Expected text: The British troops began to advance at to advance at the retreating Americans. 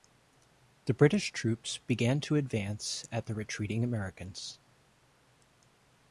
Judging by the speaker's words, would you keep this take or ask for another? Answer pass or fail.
fail